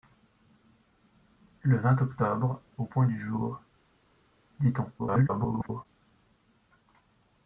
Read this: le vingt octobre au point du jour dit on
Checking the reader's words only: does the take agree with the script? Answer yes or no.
no